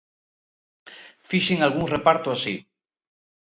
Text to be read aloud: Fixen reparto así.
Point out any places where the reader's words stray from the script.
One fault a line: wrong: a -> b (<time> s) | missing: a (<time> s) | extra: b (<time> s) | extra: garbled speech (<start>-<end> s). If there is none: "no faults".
extra: algún (1.6 s)